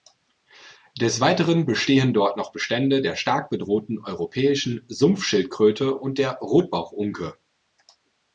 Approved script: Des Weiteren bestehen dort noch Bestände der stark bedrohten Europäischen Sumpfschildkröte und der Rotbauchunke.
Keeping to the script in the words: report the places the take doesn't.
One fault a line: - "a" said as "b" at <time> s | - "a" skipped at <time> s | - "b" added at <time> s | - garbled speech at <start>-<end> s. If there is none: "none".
none